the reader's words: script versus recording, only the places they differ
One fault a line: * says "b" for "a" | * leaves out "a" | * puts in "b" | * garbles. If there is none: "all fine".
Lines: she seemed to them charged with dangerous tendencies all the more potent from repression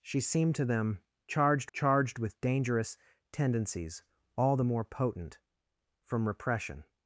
* puts in "charged"